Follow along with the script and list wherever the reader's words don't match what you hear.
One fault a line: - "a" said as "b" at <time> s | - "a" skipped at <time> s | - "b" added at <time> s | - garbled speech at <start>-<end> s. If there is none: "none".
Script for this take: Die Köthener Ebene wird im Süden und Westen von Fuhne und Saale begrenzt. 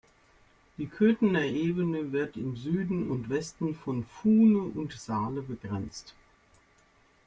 none